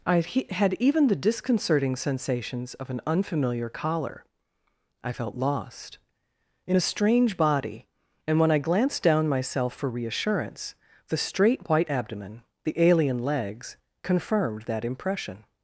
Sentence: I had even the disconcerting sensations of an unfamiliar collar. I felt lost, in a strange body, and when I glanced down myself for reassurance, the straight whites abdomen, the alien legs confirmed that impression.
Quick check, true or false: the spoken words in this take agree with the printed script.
false